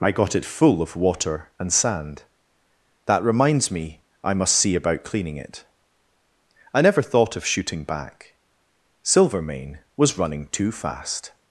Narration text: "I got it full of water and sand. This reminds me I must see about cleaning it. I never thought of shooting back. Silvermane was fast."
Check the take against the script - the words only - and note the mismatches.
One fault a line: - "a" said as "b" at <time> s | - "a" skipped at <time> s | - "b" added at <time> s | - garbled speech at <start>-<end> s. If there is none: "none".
- "This" said as "That" at 3.0 s
- "running too" added at 10.2 s